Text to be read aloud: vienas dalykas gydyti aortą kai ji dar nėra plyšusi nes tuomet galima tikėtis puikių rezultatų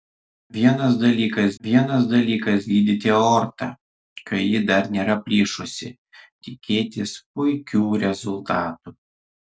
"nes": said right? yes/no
no